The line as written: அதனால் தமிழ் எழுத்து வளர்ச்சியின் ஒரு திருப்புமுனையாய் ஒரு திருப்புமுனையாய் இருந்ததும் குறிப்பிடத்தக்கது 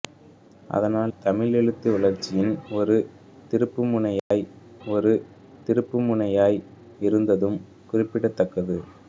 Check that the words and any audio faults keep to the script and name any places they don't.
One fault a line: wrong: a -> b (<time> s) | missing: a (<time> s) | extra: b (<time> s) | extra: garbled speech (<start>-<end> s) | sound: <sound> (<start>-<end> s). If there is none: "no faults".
sound: dropout (4.2-4.3 s)